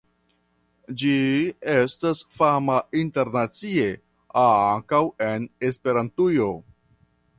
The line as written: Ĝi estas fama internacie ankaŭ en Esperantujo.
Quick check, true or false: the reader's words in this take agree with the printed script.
true